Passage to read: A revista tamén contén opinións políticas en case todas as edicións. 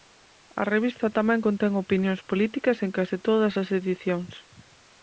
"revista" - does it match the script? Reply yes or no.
yes